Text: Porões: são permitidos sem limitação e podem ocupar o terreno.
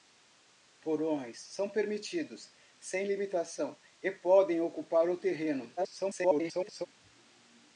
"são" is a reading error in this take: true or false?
false